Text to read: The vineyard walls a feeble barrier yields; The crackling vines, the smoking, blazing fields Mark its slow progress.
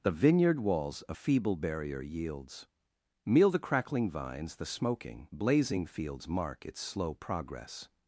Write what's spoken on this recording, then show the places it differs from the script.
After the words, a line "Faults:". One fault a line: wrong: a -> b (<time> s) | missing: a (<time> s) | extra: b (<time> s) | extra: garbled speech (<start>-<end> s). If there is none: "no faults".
The vineyard walls a feeble barrier yields; meal The crackling vines, the smoking, blazing fields Mark its slow progress.
Faults:
extra: meal (3.2 s)